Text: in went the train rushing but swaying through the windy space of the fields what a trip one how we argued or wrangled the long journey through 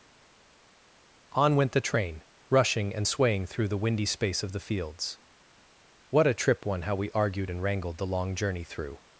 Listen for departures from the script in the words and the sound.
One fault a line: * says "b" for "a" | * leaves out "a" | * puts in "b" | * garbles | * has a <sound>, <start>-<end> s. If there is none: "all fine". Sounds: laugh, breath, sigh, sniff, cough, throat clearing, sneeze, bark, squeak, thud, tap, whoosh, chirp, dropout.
* says "on" for "in"
* says "and" for "but"
* says "and" for "or"